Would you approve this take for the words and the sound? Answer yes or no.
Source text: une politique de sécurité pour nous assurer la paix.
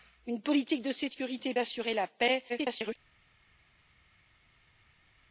no